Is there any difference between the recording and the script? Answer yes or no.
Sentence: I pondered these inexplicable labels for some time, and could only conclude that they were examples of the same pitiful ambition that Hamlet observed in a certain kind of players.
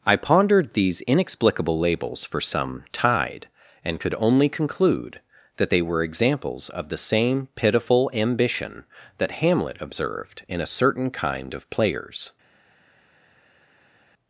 yes